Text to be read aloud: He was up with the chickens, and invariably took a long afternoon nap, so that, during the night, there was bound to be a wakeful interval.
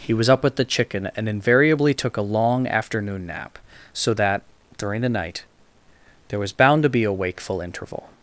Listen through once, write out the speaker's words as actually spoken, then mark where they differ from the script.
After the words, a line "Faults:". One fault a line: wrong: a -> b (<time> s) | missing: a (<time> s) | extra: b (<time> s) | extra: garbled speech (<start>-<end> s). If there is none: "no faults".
He was up with the chicken, and invariably took a long afternoon nap, so that, during the night, there was bound to be a wakeful interval.
Faults:
wrong: chickens -> chicken (0.7 s)